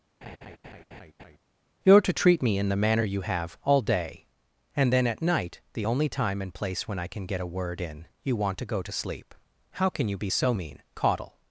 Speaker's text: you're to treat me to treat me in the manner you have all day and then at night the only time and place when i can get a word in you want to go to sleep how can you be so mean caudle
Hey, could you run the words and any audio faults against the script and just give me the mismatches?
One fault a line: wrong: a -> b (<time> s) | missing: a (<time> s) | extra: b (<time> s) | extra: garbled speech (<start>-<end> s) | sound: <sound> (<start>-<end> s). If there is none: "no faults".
sound: laugh (0.2-1.4 s)
missing: to treat me (2.6 s)